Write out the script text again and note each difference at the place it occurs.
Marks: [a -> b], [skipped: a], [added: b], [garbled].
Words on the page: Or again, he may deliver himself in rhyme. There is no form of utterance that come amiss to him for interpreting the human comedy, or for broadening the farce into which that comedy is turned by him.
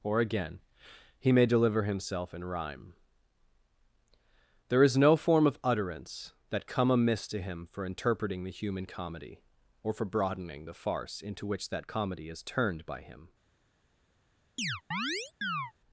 Or again, he may deliver himself in rhyme. There is no form of utterance that come amiss to him for interpreting the human comedy, or for broadening the farce into which that comedy is turned by him.